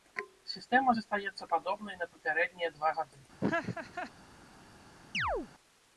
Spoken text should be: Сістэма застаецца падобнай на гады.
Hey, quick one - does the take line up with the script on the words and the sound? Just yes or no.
no